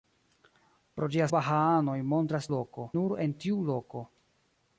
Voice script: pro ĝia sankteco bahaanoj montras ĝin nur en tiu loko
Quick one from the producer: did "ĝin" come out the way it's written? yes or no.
no